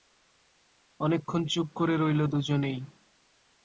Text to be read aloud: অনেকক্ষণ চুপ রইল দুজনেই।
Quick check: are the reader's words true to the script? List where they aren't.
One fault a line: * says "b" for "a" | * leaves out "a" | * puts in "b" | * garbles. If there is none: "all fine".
* puts in "করে"